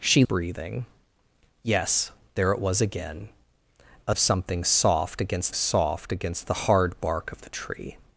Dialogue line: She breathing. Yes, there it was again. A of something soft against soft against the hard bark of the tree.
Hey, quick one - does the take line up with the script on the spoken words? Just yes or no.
yes